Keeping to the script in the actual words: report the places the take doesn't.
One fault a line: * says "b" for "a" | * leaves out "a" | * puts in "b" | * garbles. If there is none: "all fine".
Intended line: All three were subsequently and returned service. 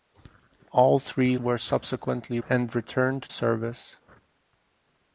all fine